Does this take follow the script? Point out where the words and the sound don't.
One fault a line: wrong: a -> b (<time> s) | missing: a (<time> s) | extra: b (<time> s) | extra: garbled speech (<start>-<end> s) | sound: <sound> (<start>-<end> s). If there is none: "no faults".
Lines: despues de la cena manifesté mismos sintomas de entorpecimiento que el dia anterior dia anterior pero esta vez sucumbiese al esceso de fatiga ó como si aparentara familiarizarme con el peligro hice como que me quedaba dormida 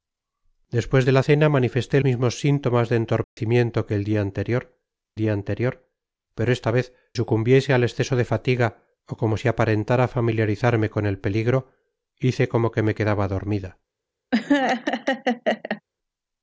sound: dropout (3.2-3.4 s)
sound: laugh (14.3-15.8 s)